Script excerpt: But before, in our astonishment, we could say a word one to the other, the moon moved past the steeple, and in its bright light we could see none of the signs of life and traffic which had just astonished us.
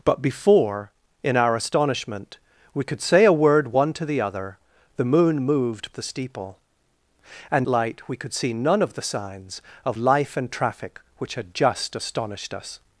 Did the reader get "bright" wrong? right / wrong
wrong